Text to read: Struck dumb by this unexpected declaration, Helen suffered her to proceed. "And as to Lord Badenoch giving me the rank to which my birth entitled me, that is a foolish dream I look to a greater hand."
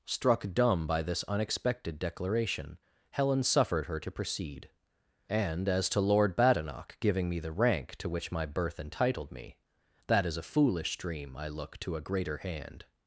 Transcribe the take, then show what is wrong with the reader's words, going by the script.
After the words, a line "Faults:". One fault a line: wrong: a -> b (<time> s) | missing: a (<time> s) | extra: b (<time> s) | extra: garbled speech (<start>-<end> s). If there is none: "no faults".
Struck dumb by this unexpected declaration, Helen suffered her to proceed. "And as to Lord Badenoch giving me the rank to which my birth entitled me, that is a foolish dream I look to a greater hand."
Faults:
no faults